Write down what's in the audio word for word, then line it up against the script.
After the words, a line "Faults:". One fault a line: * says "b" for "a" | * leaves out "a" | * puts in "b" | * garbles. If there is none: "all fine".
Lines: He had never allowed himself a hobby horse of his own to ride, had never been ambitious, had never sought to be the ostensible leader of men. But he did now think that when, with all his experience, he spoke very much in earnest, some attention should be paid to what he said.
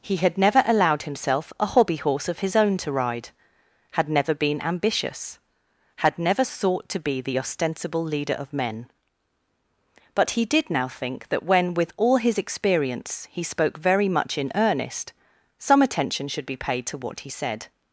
He had never allowed himself a hobby horse of his own to ride, had never been ambitious, had never sought to be the ostensible leader of men. But he did now think that when, with all his experience, he spoke very much in earnest, some attention should be paid to what he said.
Faults:
all fine